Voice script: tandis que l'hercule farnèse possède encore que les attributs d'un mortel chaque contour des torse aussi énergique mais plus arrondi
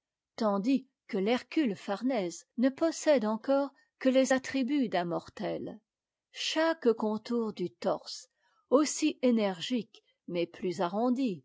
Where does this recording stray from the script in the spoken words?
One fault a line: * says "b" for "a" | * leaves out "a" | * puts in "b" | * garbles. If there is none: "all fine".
* puts in "ne"
* says "du" for "des"